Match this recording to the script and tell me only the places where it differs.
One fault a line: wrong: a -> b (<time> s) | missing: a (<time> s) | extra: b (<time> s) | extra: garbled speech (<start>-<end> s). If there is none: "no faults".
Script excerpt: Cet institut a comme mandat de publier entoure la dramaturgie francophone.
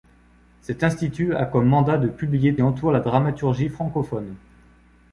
no faults